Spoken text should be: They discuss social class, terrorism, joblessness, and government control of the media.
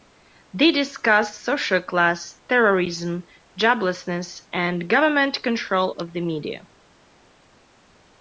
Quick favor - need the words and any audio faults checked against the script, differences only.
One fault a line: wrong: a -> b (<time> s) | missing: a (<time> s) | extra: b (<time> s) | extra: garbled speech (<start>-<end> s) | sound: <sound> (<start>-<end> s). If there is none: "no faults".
no faults